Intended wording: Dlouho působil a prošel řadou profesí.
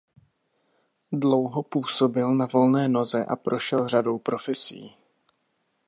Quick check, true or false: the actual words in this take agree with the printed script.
false